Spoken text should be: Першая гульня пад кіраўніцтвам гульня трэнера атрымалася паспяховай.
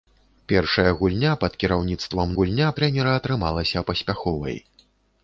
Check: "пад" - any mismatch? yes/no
no